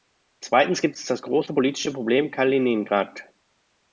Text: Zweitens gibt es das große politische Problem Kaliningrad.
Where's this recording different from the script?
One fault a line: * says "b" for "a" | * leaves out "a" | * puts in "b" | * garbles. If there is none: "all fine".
all fine